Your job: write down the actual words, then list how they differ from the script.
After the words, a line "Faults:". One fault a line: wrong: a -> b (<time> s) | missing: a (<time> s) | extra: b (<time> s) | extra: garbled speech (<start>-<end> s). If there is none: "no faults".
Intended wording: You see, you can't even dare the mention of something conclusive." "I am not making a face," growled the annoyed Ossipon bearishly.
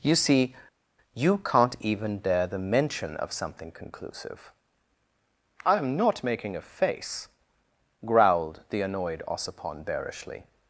You see, you can't even dare the mention of something conclusive." "I am not making a face," growled the annoyed Ossipon bearishly.
Faults:
no faults